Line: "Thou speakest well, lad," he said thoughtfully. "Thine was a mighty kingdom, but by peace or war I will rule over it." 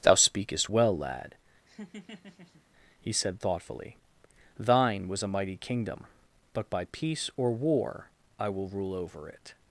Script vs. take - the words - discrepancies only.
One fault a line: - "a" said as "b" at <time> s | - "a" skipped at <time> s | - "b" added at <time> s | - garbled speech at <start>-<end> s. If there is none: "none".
none